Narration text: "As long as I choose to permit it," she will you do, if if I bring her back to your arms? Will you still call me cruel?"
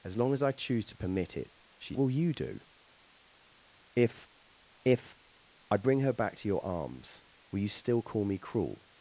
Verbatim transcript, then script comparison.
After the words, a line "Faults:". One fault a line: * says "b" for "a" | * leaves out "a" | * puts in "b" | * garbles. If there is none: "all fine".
"As long as I choose to permit it," she will you do, if if I bring her back to your arms? Will you still call me cruel?"
Faults:
all fine